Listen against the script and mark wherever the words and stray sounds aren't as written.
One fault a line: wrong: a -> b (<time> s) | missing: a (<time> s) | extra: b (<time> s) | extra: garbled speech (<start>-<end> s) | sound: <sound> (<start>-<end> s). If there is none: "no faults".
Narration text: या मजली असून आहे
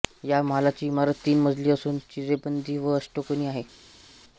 extra: महालाची इमारत तीन (0.4 s)
extra: चिरेबंदी व अष्टकोनी (2.1 s)